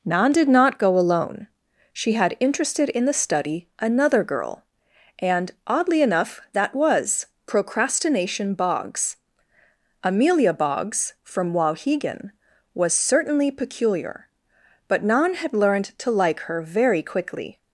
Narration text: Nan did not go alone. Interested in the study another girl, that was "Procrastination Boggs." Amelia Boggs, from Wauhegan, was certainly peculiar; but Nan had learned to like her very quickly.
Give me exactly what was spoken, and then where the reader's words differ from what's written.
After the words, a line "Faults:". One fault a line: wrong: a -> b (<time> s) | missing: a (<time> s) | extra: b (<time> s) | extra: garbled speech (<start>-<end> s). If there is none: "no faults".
Nan did not go alone. She had interested in the study another girl, and oddly enough that was "Procrastination Boggs." Amelia Boggs, from Wauhegan, was certainly peculiar; but Nan had learned to like her very quickly.
Faults:
extra: She had (1.9 s)
extra: and oddly enough (5.2 s)